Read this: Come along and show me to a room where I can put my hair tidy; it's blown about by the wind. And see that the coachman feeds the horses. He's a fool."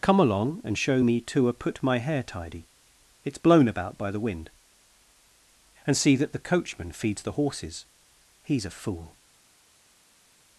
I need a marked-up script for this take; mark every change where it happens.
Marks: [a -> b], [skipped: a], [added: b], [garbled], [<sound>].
Come along and show me to a [skipped: room where I can] put my hair tidy; it's blown about by the wind. And see that the coachman feeds the horses. He's a fool."